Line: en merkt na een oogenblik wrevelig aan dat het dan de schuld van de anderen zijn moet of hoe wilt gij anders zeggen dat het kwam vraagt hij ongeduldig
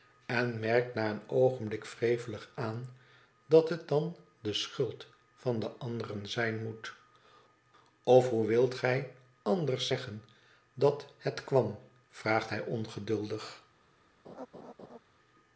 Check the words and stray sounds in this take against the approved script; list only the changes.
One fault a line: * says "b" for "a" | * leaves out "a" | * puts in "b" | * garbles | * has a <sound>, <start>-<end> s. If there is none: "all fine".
* has a laugh, 14.2-15.0 s